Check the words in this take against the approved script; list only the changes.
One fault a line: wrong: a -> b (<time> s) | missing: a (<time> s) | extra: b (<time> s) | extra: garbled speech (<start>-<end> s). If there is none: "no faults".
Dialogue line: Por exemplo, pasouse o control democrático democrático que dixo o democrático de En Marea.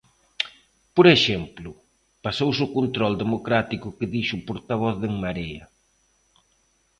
missing: democrático (3.9 s)
wrong: democrático -> portavoz (4.5 s)